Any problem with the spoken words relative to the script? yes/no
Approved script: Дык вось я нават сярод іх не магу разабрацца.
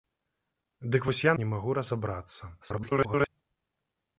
yes